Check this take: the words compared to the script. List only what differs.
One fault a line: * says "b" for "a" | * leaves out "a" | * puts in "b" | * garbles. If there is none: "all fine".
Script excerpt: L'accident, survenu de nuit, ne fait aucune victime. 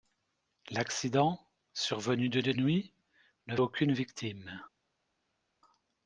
* puts in "de"
* leaves out "fait"